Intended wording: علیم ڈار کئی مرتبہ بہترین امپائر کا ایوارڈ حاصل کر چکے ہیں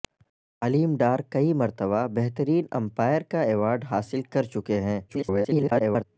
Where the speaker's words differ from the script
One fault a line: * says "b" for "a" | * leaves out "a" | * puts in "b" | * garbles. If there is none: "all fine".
* garbles